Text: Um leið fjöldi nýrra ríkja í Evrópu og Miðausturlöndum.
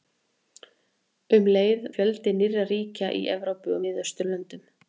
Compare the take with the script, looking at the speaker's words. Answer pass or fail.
pass